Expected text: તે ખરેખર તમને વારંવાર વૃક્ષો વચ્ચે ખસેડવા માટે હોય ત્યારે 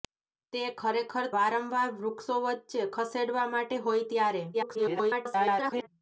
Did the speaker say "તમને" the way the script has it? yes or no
no